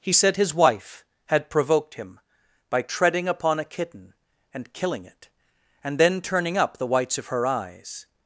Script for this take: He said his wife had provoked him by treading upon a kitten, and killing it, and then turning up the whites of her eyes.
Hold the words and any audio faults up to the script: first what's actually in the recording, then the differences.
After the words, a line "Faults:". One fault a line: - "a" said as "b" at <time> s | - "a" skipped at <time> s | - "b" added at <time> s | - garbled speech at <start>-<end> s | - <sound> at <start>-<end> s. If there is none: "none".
He said his wife had provoked him by treading upon a kitten, and killing it, and then turning up the whites of her eyes.
Faults:
none